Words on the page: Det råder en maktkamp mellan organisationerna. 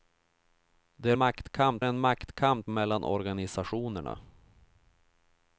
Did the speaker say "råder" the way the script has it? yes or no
no